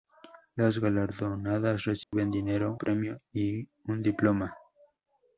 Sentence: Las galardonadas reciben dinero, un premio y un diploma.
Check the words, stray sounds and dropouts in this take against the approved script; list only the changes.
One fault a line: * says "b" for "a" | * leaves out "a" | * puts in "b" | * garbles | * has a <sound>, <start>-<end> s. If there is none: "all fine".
* has a dropout, 2.0-2.1 s
* leaves out "un"